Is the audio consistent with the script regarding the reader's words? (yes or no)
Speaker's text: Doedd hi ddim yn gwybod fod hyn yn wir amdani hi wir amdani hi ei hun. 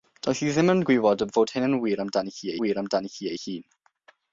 yes